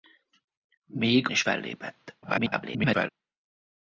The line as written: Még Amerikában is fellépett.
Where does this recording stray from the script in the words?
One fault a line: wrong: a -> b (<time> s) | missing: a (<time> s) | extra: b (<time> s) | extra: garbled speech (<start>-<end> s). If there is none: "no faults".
missing: Amerikában (1.3 s)
extra: garbled speech (2.2-3.1 s)